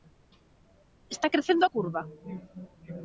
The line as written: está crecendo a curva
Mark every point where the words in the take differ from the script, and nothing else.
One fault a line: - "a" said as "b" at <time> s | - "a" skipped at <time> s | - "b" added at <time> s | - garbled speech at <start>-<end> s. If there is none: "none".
none